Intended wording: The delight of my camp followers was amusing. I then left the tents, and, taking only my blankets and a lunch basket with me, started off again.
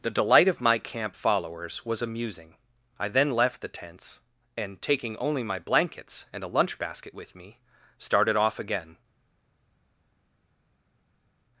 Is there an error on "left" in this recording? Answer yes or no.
no